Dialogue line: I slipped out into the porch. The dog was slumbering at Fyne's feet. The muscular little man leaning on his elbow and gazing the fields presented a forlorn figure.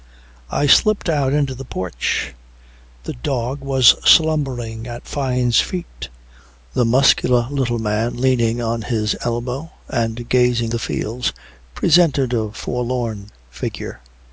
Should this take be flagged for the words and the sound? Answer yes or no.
no